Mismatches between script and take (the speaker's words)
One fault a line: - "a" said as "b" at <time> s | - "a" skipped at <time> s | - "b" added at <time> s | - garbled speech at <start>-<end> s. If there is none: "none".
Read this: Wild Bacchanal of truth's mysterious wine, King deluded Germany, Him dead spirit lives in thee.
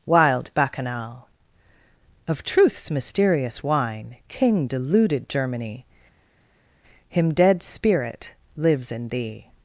none